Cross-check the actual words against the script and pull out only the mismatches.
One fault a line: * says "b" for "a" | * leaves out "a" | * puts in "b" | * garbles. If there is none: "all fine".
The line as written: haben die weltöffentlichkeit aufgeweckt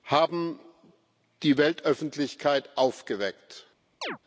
all fine